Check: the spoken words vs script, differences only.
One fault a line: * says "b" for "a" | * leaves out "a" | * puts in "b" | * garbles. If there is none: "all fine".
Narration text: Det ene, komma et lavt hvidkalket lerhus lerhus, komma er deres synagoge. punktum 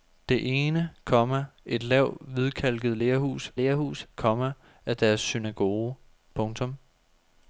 all fine